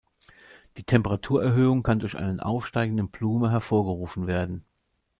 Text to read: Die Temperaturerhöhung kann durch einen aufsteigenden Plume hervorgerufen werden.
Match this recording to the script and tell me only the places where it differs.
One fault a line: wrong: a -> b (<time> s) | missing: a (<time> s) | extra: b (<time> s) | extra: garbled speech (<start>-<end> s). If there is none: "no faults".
no faults